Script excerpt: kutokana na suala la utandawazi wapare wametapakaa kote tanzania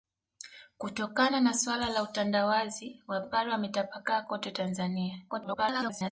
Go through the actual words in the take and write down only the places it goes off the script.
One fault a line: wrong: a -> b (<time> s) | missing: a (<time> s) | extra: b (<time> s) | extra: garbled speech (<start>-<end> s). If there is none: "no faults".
extra: garbled speech (5.3-6.1 s)